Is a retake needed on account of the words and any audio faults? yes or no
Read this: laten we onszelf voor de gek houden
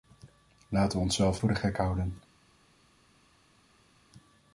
no